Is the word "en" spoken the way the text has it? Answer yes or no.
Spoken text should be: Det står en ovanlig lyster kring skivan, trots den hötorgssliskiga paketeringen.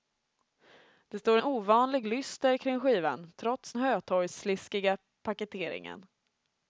no